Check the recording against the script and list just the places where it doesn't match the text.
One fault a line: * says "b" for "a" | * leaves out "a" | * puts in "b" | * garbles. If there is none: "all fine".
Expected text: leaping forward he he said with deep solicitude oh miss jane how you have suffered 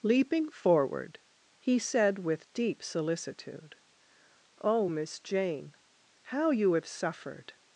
* leaves out "he"